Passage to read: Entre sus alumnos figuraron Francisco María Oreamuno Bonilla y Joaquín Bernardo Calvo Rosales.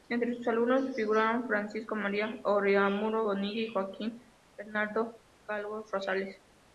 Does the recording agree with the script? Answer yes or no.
yes